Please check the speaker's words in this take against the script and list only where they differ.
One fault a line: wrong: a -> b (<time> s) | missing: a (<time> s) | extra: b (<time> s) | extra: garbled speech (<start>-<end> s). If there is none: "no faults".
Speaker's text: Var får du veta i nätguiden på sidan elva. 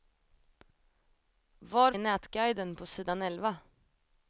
missing: får du veta (1.9 s)